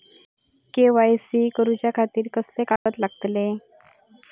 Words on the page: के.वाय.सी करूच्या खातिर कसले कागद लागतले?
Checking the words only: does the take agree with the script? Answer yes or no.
yes